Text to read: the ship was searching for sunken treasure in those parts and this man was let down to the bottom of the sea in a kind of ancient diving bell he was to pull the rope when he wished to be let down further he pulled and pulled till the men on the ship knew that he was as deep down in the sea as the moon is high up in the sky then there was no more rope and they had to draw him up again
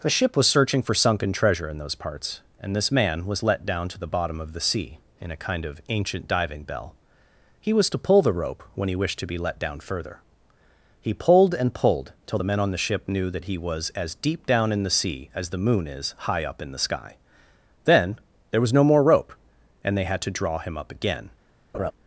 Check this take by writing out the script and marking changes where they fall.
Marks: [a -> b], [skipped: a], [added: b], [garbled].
the ship was searching for sunken treasure in those parts and this man was let down to the bottom of the sea in a kind of ancient diving bell he was to pull the rope when he wished to be let down further he pulled and pulled till the men on the ship knew that he was as deep down in the sea as the moon is high up in the sky then there was no more rope and they had to draw him up again